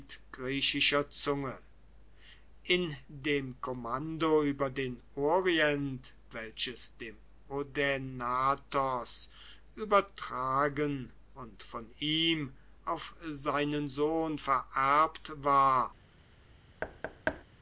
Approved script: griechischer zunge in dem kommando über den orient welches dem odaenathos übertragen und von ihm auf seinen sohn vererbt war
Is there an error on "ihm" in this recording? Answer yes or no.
no